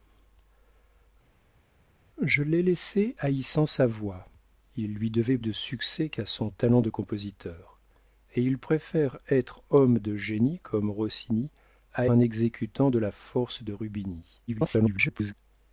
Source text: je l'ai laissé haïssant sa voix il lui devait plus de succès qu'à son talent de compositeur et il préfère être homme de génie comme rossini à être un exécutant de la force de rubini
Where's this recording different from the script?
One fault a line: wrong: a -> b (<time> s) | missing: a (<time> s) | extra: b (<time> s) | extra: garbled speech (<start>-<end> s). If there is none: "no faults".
missing: plus (5.4 s)
missing: être (12.1 s)
extra: garbled speech (14.5-15.3 s)